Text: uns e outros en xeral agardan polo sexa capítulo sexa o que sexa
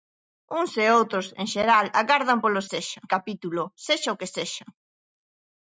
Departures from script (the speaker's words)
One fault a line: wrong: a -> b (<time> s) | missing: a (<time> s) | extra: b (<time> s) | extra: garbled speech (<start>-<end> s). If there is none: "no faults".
no faults